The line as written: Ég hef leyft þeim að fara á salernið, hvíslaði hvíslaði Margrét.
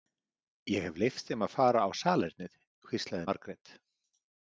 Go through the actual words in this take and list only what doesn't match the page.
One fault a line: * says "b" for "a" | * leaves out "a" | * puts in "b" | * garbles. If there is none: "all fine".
* leaves out "hvíslaði"